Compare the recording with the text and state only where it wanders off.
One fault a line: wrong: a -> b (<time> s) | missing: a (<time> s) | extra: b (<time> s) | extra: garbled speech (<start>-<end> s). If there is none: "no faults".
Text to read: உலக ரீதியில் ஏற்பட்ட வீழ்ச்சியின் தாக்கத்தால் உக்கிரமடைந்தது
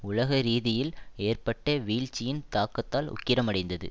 no faults